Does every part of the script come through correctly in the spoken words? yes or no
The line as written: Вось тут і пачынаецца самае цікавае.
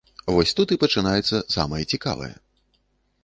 yes